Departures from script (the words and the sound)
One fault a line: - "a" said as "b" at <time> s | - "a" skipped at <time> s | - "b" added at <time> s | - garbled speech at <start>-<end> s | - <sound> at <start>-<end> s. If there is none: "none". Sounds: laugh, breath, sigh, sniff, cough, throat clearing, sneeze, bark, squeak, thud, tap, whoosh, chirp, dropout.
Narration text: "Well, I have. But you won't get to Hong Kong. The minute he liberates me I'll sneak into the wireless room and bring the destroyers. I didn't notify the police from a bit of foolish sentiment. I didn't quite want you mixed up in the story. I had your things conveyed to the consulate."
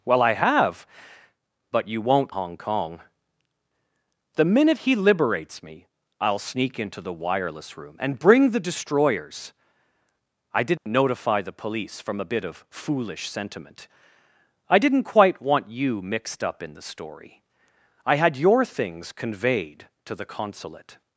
- "get to" skipped at 2.4 s
- dropout at 10.8-10.9 s